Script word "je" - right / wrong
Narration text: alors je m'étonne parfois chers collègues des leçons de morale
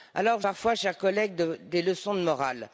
wrong